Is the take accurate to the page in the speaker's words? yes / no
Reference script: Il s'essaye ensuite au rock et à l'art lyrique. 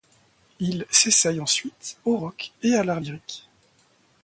yes